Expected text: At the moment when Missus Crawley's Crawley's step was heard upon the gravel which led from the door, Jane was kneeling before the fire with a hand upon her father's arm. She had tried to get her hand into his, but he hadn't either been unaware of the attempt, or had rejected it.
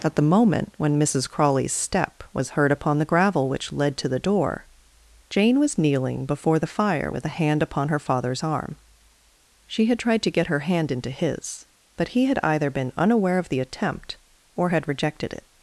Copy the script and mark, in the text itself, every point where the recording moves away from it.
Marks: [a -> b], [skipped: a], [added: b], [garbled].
At the moment when Missus Crawley's [skipped: Crawley's] step was heard upon the gravel which led [from -> to] the door, Jane was kneeling before the fire with a hand upon her father's arm. She had tried to get her hand into his, but he [hadn't -> had] either been unaware of the attempt, or had rejected it.